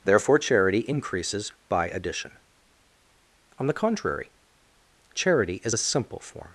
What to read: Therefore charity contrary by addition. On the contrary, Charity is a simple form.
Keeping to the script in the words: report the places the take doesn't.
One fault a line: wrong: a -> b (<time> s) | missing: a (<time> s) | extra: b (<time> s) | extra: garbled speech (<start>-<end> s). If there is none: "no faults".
wrong: contrary -> increases (0.8 s)